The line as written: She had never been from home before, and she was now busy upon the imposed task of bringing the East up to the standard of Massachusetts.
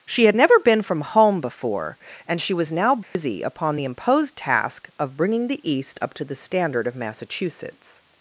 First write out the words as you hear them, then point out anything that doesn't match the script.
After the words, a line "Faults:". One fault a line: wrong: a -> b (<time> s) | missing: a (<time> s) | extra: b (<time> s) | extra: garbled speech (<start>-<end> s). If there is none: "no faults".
She had never been from home before, and she was now busy upon the imposed task of bringing the East up to the standard of Massachusetts.
Faults:
no faults